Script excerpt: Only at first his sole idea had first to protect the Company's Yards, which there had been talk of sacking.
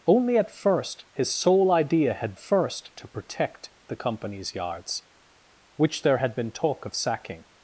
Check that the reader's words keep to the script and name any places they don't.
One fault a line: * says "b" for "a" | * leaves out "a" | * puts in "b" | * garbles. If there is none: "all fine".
all fine